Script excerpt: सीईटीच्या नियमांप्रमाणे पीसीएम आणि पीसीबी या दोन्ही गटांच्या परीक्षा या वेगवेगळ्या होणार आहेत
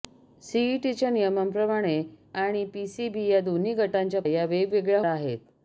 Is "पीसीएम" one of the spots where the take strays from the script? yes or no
yes